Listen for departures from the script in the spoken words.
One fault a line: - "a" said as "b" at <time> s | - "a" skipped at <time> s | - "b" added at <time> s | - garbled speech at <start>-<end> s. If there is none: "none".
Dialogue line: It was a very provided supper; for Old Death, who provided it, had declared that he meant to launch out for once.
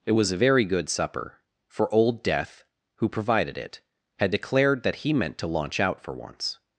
- "provided" said as "good" at 0.6 s